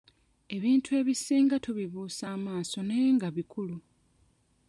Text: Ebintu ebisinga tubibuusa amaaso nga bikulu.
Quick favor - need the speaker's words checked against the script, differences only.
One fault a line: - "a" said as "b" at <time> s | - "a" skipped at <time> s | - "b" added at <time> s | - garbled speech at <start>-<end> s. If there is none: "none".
- "naye" added at 2.9 s